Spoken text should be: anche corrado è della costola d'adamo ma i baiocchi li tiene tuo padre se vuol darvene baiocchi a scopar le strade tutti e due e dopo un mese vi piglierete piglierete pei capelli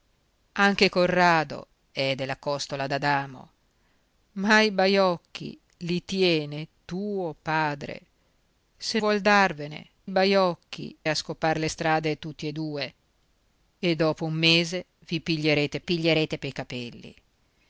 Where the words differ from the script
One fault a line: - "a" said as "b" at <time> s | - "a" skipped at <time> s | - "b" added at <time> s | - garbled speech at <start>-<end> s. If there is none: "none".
none